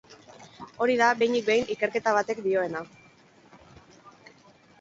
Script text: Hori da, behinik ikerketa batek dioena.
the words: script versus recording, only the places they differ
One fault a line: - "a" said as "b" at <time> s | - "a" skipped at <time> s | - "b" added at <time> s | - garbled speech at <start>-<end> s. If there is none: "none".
- "behin" added at 1.5 s